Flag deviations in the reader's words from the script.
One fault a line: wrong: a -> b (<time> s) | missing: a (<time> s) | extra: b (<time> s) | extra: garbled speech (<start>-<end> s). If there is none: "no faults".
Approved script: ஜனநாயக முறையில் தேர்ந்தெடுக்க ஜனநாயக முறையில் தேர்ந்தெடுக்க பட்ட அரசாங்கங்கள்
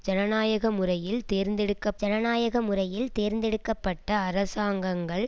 no faults